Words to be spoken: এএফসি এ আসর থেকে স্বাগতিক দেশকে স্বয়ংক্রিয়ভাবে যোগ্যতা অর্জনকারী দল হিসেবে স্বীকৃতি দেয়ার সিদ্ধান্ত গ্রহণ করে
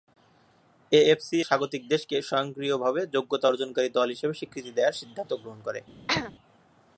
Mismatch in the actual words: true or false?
true